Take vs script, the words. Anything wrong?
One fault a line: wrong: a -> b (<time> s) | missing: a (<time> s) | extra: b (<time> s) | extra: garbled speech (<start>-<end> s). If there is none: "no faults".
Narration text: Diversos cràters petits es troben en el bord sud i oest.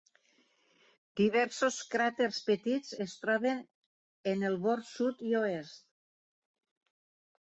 no faults